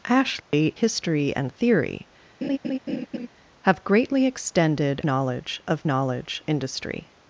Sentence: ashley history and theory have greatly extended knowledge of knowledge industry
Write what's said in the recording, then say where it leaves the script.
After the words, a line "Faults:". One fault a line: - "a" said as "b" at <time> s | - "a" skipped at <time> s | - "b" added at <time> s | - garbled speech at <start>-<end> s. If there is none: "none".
ashley history and theory have greatly extended knowledge of knowledge industry
Faults:
none